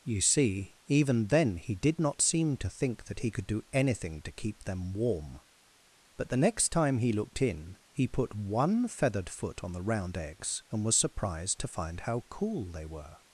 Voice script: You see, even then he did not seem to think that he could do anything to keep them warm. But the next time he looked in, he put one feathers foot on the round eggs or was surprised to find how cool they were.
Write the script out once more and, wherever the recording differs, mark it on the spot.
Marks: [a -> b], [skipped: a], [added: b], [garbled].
You see, even then he did not seem to think that he could do anything to keep them warm. But the next time he looked in, he put one [feathers -> feathered] foot on the round eggs [or -> and] was surprised to find how cool they were.